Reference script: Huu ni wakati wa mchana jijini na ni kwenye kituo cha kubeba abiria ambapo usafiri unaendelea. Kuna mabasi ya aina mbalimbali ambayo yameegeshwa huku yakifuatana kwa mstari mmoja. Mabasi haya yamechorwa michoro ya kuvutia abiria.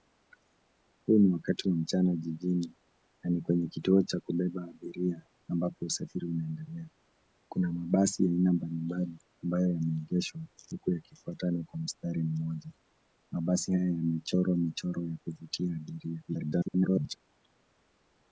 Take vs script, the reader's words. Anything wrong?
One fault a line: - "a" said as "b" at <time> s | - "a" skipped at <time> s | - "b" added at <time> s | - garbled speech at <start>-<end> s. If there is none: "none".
- garbled speech at 16.3-17.2 s